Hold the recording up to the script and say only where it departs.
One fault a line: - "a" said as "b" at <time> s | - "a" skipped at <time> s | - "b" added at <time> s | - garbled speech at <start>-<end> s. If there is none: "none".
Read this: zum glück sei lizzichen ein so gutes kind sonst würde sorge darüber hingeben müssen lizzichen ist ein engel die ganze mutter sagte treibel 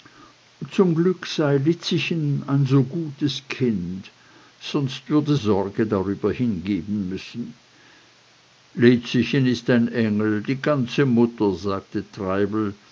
none